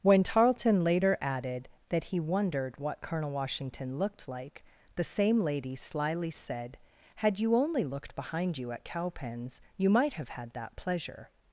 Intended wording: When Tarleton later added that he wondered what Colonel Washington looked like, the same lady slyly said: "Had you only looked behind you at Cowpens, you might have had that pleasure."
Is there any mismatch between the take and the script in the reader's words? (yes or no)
no